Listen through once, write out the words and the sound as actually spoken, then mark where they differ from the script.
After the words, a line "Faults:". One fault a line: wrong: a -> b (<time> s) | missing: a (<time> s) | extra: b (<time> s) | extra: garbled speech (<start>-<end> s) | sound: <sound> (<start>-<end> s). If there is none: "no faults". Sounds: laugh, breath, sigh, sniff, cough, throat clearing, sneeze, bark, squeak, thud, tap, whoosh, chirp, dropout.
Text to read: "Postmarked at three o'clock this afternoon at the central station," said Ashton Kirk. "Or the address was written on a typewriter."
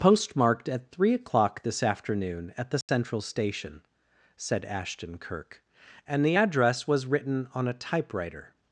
"Postmarked at three o'clock this afternoon at the central station," said Ashton Kirk. "And the address was written on a typewriter."
Faults:
sound: dropout (2.8-2.9 s)
wrong: Or -> And (6.1 s)